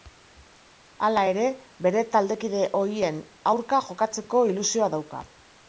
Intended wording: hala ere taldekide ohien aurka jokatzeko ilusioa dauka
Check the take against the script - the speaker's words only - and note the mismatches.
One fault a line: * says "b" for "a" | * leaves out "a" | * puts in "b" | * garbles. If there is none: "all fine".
* puts in "bere"